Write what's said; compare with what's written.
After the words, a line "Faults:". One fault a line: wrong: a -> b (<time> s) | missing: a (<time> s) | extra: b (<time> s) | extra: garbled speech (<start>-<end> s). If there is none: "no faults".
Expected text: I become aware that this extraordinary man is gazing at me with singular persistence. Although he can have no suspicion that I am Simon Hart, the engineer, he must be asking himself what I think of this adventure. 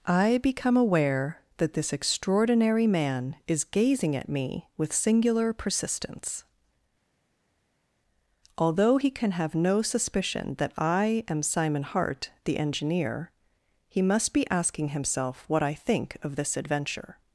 I become aware that this extraordinary man is gazing at me with singular persistence. Although he can have no suspicion that I am Simon Hart, the engineer, he must be asking himself what I think of this adventure.
Faults:
no faults